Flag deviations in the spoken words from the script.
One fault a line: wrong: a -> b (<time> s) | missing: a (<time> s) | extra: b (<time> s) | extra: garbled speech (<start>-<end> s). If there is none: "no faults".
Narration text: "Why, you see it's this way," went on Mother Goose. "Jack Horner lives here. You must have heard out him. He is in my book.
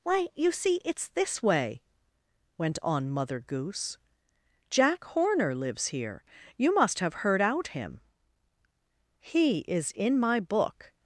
no faults